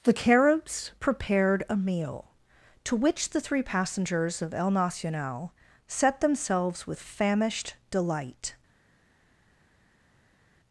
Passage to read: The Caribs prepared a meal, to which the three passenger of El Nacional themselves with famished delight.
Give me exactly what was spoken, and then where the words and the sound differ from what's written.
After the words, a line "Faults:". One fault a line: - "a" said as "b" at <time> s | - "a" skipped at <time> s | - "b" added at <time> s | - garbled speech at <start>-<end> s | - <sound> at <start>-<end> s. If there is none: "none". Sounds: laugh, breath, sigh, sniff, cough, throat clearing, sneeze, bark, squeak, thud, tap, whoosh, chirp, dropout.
The Caribs prepared a meal, to which the three passengers of El Nacional set themselves with famished delight.
Faults:
- "passenger" said as "passengers" at 3.6 s
- "set" added at 5.9 s